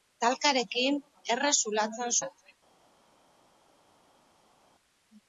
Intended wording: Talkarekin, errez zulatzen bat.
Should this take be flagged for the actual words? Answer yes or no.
no